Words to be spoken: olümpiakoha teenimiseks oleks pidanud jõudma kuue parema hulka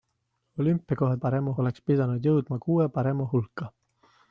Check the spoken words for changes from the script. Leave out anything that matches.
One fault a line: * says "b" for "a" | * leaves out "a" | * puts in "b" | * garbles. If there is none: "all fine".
* says "parema" for "teenimiseks"